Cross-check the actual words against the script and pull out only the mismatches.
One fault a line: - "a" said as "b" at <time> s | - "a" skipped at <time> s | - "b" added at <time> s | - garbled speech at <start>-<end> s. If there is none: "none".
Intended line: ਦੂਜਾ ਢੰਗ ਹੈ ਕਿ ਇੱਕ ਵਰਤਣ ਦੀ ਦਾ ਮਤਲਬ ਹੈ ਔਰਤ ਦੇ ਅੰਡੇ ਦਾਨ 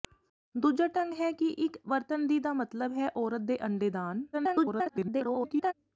- garbled speech at 4.3-5.7 s